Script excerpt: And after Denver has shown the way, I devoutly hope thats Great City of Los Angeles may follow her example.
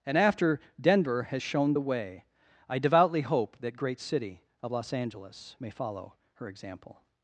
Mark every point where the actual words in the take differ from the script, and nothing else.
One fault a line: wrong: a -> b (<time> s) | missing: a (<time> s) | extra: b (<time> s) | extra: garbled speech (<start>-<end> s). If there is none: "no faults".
wrong: thats -> that (3.6 s)